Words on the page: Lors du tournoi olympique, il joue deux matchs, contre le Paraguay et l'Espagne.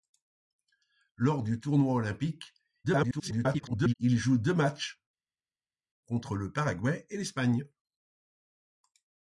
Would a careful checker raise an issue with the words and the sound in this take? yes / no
yes